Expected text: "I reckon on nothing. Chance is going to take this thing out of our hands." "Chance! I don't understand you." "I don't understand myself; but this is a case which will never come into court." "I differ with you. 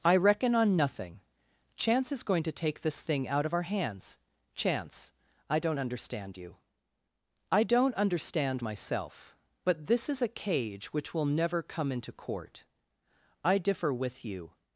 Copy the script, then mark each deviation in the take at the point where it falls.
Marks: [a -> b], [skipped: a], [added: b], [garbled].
"I reckon on nothing. Chance is going to take this thing out of our hands." "Chance! I don't understand you." "I don't understand myself; but this is a [case -> cage] which will never come into court." "I differ with you.